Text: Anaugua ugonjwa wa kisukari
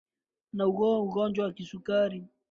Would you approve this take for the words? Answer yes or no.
yes